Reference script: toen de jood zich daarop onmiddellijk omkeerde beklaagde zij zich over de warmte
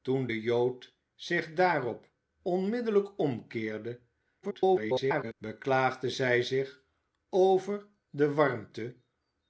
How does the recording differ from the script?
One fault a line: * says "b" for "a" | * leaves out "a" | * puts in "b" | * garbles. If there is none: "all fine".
* garbles